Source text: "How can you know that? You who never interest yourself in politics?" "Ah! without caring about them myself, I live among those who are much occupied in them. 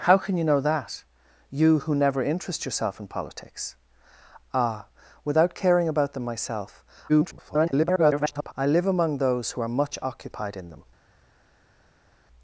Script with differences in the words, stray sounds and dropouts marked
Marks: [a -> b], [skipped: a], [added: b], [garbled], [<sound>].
"How can you know that? You who never interest yourself in politics?" "Ah! without caring about them myself, [garbled] I live among those who are much occupied in them.